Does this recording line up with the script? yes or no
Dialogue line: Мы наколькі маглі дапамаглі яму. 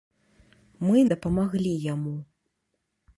no